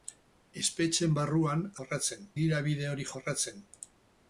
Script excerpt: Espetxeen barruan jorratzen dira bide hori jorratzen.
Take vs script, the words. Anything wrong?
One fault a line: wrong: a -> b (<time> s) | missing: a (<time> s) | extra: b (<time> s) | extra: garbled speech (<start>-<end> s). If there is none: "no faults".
no faults